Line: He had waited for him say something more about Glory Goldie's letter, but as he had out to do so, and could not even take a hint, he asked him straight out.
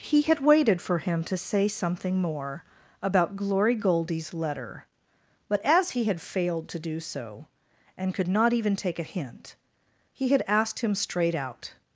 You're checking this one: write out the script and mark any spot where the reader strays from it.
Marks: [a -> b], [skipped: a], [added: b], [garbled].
He had waited for him [added: to] say something more about Glory Goldie's letter, but as he had [out -> failed] to do so, and could not even take a hint, he [added: had] asked him straight out.